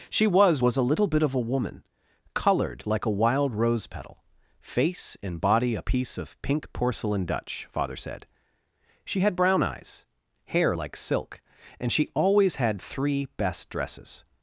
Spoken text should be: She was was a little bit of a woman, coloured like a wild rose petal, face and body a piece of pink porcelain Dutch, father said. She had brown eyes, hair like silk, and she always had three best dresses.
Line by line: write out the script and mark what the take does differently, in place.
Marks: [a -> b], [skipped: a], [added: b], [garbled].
She was was a little bit of a woman, coloured like a wild rose petal, face and body a piece of pink porcelain Dutch, father said. She had brown eyes, hair like silk, and she always had three best dresses.